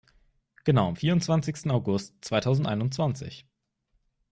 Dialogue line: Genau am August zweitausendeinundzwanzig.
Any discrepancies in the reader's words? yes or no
yes